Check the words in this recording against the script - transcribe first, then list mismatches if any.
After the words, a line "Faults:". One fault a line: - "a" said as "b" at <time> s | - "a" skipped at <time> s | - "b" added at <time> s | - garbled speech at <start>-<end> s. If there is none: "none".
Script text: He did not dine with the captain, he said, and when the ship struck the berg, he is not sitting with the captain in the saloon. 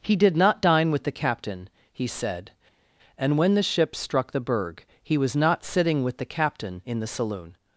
He did not dine with the captain, he said, and when the ship struck the berg, he was not sitting with the captain in the saloon.
Faults:
- "is" said as "was" at 5.2 s